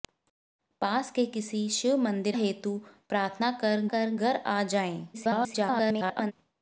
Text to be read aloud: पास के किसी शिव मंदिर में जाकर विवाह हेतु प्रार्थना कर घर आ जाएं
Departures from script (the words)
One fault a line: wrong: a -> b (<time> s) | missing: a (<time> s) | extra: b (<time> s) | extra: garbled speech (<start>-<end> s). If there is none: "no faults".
missing: में जाकर विवाह (2.4 s)
extra: कर (3.9 s)
extra: garbled speech (5.1-6.3 s)